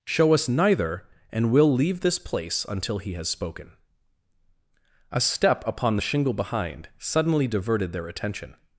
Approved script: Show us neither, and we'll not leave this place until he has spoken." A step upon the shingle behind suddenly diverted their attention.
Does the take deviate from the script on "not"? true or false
true